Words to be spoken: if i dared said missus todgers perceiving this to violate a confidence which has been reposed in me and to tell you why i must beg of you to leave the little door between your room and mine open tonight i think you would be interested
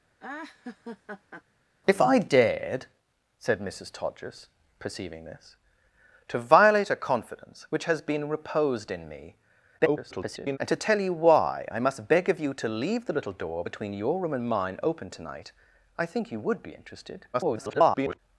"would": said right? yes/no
yes